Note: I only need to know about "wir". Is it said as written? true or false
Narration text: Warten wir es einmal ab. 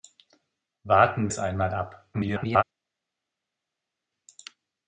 false